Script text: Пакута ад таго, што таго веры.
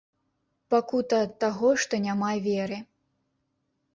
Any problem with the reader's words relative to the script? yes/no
yes